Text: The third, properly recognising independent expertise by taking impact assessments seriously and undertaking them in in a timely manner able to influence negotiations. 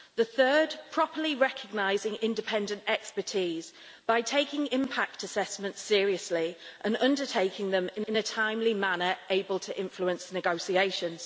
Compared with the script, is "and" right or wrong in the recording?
right